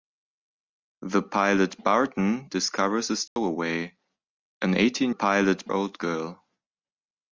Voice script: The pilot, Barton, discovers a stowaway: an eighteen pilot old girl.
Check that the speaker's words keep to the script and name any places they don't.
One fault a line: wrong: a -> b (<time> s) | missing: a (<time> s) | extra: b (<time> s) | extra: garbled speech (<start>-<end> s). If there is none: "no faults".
no faults